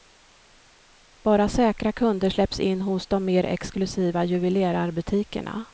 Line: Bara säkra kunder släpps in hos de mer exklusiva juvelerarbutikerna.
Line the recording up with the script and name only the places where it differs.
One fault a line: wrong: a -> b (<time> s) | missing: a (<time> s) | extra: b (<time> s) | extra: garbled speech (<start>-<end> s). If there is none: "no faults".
no faults